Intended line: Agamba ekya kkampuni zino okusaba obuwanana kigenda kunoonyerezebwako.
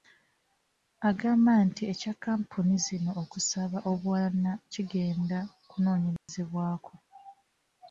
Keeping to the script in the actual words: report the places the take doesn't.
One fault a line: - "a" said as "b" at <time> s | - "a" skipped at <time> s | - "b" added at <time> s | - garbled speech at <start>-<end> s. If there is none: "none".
- "nti" added at 1.7 s